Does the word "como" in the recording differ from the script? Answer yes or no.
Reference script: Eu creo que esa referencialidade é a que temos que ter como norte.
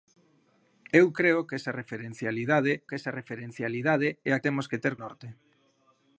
yes